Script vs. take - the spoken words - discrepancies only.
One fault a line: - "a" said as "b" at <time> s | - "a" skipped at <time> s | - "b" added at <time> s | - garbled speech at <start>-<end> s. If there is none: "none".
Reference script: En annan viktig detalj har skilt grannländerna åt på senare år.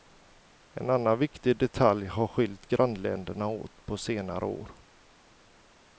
none